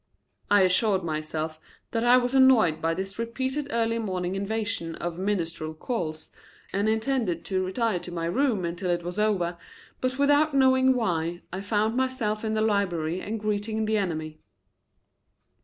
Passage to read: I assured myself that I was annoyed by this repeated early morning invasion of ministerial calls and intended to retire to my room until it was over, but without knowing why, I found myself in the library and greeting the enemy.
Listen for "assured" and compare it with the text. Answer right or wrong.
right